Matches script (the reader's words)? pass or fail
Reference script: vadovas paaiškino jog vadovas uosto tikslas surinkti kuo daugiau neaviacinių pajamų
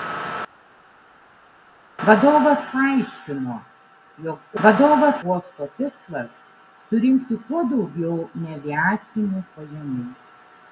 pass